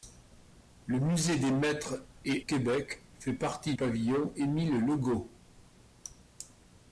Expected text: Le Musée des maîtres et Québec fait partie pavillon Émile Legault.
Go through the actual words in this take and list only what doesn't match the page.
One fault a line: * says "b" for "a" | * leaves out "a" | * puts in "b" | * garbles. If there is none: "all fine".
all fine